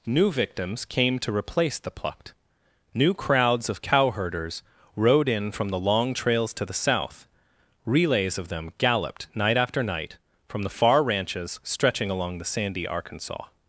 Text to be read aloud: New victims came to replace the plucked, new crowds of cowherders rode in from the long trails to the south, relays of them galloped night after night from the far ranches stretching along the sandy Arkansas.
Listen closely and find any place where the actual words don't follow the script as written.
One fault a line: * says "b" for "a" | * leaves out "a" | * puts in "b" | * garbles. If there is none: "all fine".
all fine